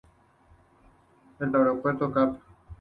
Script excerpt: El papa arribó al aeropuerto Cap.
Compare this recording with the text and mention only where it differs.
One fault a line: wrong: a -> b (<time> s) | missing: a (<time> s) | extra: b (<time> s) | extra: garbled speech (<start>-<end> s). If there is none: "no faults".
missing: papa arribó al (1.5 s)